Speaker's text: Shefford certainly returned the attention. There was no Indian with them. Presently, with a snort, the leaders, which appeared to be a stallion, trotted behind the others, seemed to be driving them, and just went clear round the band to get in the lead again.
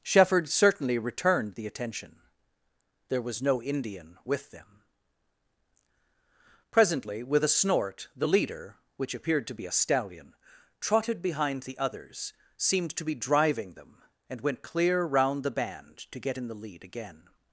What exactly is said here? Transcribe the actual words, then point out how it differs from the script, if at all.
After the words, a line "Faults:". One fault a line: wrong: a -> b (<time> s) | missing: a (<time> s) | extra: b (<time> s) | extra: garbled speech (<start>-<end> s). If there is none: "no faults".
Shefford certainly returned the attention. There was no Indian with them. Presently, with a snort, the leader, which appeared to be a stallion, trotted behind the others, seemed to be driving them, and went clear round the band to get in the lead again.
Faults:
wrong: leaders -> leader (8.3 s)
missing: just (14.4 s)